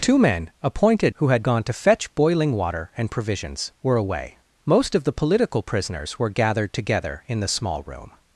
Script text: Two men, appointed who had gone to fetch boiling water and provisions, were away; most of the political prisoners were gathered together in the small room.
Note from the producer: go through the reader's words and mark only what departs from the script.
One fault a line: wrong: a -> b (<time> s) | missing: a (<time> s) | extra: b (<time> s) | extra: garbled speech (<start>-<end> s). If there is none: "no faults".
no faults